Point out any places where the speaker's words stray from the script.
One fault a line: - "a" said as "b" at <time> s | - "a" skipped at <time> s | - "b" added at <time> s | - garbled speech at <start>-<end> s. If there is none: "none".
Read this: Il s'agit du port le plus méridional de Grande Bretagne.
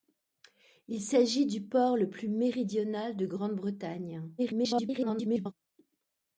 - garbled speech at 4.4-5.5 s